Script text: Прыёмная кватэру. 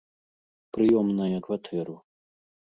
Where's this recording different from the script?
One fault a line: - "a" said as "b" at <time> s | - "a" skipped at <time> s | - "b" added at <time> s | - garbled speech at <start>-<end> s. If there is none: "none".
none